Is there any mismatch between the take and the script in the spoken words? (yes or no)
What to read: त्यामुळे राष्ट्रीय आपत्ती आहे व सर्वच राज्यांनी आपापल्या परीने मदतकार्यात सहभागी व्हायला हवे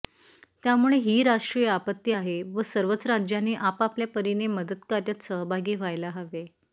yes